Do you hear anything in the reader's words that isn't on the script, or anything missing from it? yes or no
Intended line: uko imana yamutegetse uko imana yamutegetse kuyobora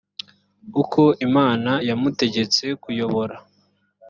yes